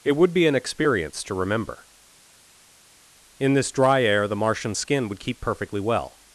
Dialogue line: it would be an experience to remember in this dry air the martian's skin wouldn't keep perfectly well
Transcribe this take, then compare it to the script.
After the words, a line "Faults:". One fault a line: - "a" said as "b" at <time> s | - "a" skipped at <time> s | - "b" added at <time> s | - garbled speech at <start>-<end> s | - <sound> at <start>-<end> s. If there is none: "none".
it would be an experience to remember in this dry air the martian's skin would keep perfectly well
Faults:
- "wouldn't" said as "would" at 5.1 s